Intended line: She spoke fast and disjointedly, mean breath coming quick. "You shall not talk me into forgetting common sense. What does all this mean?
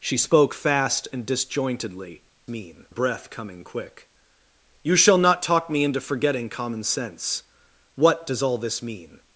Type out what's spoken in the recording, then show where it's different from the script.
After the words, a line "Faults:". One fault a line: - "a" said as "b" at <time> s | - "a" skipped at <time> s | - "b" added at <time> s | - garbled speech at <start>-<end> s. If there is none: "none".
She spoke fast and disjointedly, mean breath coming quick. "You shall not talk me into forgetting common sense. What does all this mean?
Faults:
none